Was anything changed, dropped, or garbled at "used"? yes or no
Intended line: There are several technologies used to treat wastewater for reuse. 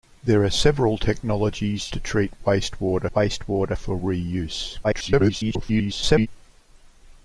yes